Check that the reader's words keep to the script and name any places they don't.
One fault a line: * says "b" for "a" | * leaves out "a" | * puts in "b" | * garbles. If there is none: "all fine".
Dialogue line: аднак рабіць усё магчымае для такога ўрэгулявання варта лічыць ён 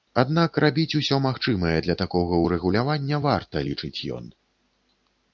all fine